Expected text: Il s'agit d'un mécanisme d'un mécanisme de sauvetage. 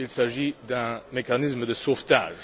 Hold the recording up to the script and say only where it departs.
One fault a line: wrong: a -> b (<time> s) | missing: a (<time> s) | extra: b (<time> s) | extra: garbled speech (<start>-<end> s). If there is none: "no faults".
missing: d'un mécanisme (1.6 s)